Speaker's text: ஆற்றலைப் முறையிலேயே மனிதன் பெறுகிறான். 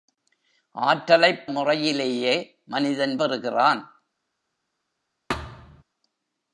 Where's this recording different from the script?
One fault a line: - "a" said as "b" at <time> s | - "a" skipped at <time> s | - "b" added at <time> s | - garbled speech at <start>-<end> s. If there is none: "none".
none